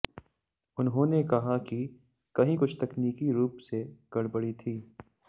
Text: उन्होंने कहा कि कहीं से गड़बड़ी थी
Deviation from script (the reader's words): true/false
true